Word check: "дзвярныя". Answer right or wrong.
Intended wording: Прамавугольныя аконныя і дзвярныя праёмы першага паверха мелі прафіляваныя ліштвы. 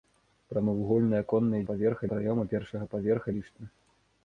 wrong